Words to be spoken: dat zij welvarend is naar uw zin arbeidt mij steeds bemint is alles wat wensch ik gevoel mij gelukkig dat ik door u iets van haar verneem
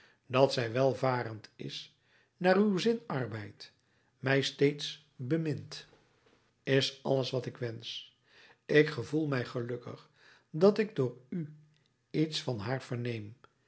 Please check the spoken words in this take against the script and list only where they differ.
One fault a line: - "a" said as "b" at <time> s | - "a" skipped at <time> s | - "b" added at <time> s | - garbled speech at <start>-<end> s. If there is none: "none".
- "ik" added at 7.5 s